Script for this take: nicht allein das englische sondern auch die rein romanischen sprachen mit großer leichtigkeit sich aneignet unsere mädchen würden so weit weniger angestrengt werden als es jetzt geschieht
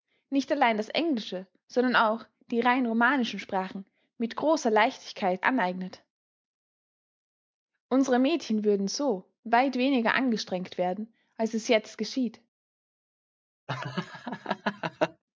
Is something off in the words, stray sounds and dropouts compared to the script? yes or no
yes